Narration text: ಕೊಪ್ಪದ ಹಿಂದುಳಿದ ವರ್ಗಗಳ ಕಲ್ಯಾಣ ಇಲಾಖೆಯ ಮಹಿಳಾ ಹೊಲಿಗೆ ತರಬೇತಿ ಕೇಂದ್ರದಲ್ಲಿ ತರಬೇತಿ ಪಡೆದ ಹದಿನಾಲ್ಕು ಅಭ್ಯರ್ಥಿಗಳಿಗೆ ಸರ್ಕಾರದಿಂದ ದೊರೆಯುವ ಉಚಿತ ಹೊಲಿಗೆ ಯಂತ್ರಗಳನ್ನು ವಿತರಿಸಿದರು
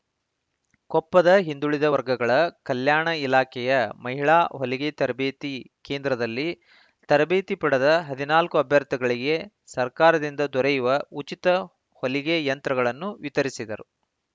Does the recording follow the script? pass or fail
pass